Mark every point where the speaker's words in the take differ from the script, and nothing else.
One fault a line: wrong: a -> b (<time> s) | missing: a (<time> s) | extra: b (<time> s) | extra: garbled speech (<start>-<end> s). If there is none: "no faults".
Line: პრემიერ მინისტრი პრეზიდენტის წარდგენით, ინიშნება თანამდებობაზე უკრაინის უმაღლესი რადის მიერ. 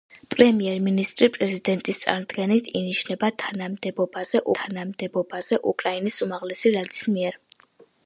extra: თანამდებობაზე (4.6 s)